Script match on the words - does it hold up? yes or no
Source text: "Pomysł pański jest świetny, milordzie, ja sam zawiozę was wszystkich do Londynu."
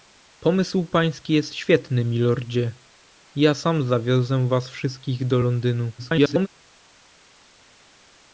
no